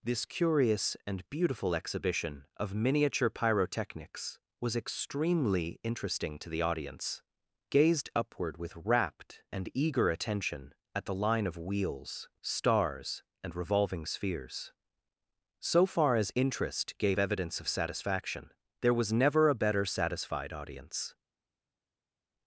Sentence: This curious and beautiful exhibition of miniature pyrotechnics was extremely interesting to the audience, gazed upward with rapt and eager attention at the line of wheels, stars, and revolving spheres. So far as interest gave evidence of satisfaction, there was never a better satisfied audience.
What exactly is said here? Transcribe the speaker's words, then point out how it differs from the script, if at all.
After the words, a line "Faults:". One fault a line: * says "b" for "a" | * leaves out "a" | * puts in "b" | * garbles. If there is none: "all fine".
This curious and beautiful exhibition of miniature pyrotechnics was extremely interesting to the audience, gazed upward with rapt and eager attention at the line of wheels, stars, and revolving spheres. So far as interest gave evidence of satisfaction, there was never a better satisfied audience.
Faults:
all fine